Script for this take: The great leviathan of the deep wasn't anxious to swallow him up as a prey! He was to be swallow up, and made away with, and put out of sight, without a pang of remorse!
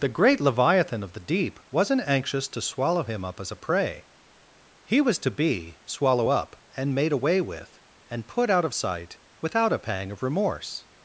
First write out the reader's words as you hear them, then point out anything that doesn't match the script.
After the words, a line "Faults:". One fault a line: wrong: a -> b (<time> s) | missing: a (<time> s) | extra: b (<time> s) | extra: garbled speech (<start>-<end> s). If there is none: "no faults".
The great leviathan of the deep wasn't anxious to swallow him up as a prey! He was to be swallow up, and made away with, and put out of sight, without a pang of remorse!
Faults:
no faults